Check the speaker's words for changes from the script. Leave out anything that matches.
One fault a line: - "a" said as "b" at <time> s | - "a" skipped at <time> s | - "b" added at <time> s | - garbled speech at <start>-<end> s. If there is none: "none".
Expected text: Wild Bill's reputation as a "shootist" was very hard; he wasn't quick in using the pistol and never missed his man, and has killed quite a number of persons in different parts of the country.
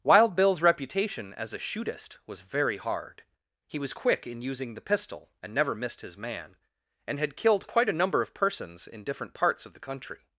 - "wasn't" said as "was" at 3.8 s
- "has" said as "had" at 7.2 s